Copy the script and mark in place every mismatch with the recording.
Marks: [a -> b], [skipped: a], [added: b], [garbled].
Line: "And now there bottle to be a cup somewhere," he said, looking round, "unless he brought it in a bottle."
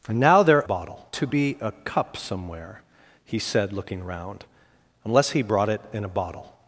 "And now there bottle to be a cup somewhere," he said, looking round, "unless he brought it in a bottle."